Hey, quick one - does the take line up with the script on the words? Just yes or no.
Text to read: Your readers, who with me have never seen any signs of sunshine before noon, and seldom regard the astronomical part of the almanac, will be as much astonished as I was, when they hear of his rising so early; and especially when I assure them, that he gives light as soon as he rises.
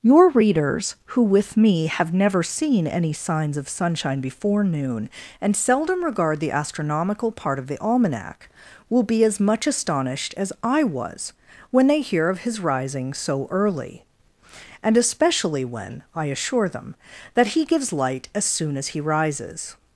yes